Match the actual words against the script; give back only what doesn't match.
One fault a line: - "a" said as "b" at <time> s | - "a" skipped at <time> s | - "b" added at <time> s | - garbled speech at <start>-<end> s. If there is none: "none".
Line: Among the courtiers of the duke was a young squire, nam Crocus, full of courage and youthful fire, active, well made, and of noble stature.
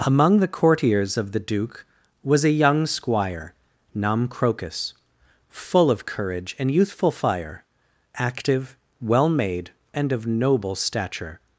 none